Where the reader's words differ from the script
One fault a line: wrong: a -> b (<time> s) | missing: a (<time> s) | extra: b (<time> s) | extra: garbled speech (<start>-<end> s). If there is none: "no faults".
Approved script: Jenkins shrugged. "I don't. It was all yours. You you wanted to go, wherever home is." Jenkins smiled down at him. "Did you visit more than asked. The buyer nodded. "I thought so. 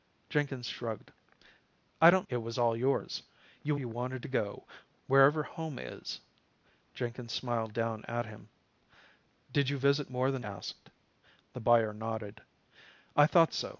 no faults